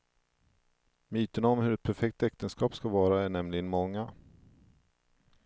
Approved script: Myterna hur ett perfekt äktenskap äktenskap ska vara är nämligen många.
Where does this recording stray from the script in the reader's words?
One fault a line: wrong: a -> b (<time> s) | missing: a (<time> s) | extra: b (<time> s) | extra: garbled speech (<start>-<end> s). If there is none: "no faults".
extra: om (1.5 s)
missing: äktenskap (2.8 s)